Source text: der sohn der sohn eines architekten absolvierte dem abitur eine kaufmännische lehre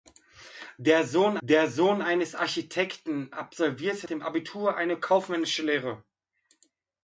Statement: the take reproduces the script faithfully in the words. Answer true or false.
true